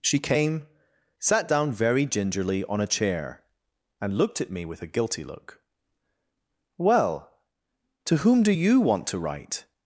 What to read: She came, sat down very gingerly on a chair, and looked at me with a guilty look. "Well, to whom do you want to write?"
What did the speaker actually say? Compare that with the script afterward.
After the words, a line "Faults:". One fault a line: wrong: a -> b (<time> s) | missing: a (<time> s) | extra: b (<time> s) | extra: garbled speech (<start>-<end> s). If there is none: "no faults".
She came, sat down very gingerly on a chair, and looked at me with a guilty look. "Well, to whom do you want to write?"
Faults:
no faults